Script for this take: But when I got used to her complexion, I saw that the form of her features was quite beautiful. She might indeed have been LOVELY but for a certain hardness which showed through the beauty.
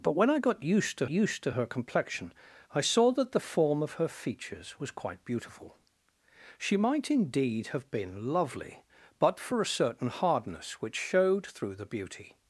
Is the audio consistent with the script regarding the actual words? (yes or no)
no